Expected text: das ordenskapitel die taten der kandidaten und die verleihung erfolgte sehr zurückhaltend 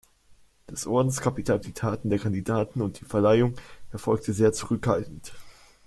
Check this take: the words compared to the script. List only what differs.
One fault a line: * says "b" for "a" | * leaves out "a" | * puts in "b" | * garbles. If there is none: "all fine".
all fine